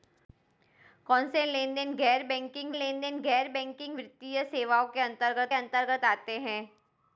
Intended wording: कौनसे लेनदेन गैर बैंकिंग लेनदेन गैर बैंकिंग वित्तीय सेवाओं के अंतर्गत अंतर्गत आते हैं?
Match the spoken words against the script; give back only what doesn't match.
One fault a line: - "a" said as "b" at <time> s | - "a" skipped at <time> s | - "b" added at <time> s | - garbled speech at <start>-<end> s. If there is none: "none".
none